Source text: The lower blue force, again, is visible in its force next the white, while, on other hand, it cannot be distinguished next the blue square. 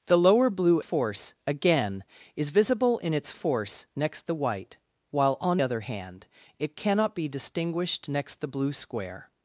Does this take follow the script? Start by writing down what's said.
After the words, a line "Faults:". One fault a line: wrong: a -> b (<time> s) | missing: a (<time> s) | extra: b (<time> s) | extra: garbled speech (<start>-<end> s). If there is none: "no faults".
The lower blue force, again, is visible in its force next the white, while, on other hand, it cannot be distinguished next the blue square.
Faults:
no faults